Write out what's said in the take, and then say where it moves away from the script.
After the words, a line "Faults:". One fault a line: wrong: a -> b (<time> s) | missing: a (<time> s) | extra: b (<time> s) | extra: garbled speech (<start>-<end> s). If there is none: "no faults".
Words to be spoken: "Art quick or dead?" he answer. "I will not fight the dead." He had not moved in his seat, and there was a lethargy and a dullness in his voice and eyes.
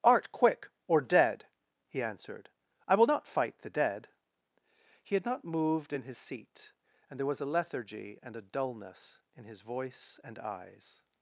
"Art quick or dead?" he answered. "I will not fight the dead." He had not moved in his seat, and there was a lethargy and a dullness in his voice and eyes.
Faults:
wrong: answer -> answered (2.0 s)